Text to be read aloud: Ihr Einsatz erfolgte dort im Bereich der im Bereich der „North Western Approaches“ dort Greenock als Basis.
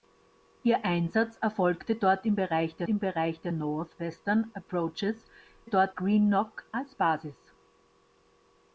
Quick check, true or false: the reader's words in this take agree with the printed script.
true